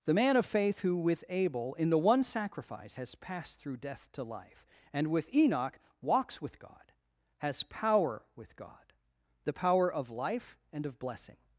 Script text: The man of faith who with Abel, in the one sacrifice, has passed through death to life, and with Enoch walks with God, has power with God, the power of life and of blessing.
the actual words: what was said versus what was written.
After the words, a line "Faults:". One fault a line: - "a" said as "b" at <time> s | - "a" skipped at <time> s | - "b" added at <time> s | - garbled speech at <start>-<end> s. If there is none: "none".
The man of faith who with Abel, in the one sacrifice, has passed through death to life, and with Enoch walks with God, has power with God, the power of life and of blessing.
Faults:
none